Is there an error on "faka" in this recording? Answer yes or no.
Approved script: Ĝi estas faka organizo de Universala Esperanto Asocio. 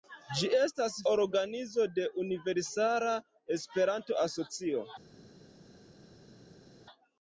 yes